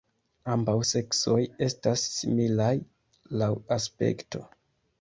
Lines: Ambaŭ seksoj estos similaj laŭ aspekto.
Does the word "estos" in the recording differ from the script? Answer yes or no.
yes